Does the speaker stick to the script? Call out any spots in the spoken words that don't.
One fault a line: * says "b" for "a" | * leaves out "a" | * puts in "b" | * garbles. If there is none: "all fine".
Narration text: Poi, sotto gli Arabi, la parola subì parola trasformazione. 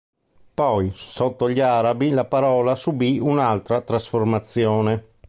* says "un'altra" for "parola"